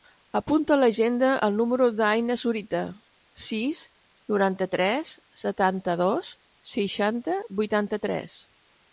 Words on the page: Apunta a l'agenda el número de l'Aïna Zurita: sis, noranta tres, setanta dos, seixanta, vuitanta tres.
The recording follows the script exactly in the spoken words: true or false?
true